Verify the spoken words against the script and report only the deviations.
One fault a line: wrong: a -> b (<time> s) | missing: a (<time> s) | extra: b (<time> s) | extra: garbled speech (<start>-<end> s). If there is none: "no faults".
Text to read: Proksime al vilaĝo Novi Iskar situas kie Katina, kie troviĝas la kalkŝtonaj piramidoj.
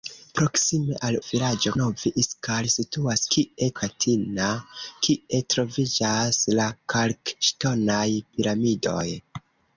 no faults